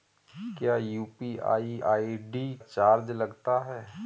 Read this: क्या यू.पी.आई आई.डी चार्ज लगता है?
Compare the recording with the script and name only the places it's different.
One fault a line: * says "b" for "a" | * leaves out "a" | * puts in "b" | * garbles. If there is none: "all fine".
all fine